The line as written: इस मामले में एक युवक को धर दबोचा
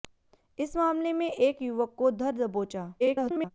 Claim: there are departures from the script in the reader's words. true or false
true